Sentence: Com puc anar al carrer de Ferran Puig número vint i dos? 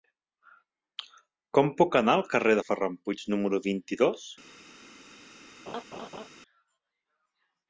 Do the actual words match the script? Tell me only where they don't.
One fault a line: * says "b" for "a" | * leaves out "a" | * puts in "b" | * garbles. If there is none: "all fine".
all fine